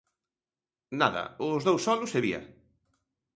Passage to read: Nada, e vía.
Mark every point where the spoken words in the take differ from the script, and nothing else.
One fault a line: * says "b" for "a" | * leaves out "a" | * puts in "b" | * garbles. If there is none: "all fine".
* puts in "os dous solos"